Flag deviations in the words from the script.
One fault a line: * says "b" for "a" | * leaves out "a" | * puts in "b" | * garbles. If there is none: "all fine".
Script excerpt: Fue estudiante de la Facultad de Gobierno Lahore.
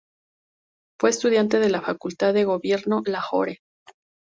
all fine